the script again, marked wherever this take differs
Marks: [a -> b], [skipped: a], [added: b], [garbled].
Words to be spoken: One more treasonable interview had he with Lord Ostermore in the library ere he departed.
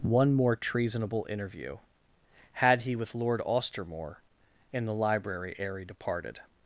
One more treasonable interview had he with Lord Ostermore in the library ere he departed.